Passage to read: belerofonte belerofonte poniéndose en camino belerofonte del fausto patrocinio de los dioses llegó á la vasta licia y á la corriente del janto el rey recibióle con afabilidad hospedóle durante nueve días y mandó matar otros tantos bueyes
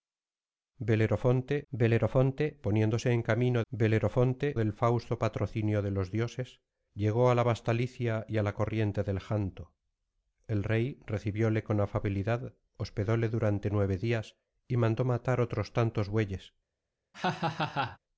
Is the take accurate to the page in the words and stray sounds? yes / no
no